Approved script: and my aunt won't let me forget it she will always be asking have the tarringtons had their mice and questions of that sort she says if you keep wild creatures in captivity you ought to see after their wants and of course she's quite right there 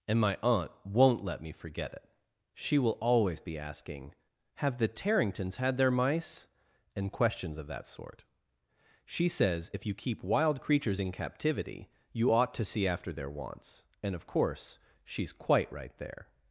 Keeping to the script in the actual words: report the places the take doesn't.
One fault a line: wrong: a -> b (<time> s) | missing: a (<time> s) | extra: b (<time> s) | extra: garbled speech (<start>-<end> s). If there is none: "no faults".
no faults